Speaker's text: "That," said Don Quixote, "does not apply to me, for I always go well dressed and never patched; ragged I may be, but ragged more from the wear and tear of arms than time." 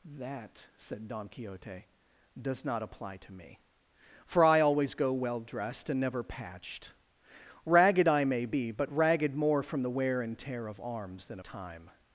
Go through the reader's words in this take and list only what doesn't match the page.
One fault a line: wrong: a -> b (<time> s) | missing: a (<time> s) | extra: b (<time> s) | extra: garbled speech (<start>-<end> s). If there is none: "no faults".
no faults